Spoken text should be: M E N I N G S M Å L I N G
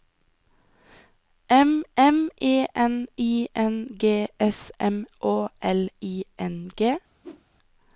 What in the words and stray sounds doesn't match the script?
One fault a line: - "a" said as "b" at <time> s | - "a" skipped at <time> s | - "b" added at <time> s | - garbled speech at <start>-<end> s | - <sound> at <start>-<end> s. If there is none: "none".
- "m" added at 2.0 s
- whoosh at 7.2-7.4 s